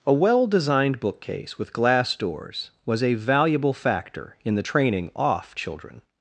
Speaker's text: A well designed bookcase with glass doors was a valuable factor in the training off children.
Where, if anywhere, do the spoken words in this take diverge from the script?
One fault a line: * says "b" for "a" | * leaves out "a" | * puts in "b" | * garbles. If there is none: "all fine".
all fine